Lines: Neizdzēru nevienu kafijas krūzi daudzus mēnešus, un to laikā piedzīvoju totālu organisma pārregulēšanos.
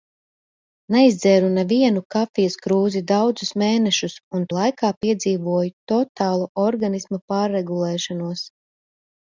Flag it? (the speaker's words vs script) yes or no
yes